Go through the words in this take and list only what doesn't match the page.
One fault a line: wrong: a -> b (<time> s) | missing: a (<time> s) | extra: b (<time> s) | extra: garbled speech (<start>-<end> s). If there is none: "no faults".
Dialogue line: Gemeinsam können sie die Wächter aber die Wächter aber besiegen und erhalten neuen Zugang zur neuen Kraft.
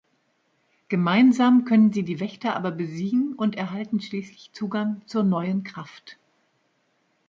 missing: die Wächter aber (2.7 s)
wrong: neuen -> schließlich (4.0 s)